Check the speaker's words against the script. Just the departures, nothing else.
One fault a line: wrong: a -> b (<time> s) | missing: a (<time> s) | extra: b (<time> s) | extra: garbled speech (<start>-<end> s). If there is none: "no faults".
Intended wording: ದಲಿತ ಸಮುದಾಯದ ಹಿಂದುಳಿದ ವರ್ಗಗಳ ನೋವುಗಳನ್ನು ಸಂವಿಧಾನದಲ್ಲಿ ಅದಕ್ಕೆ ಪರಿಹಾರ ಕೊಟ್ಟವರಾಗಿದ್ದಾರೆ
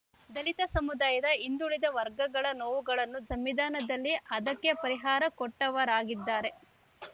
no faults